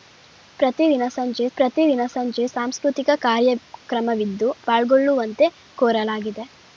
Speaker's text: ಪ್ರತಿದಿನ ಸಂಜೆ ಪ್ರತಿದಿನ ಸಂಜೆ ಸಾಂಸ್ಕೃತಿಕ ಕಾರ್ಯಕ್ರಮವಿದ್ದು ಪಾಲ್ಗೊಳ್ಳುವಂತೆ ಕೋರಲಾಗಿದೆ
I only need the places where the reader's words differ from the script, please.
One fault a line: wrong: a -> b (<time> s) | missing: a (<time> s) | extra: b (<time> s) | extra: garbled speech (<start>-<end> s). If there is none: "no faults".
no faults